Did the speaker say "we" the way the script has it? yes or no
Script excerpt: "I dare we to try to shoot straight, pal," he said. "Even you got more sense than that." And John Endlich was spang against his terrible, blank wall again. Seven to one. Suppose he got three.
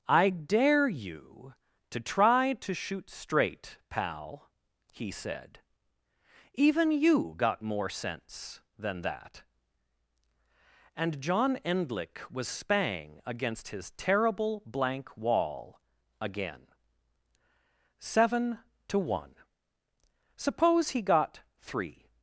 no